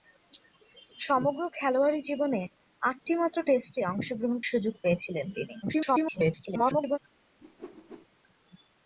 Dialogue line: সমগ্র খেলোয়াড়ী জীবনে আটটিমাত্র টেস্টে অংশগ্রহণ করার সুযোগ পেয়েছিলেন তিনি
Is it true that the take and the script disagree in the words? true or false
true